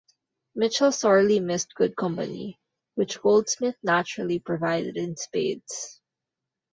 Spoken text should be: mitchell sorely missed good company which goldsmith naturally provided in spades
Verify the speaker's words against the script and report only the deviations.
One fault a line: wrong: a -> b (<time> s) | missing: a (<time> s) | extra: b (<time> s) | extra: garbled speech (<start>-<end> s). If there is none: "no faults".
no faults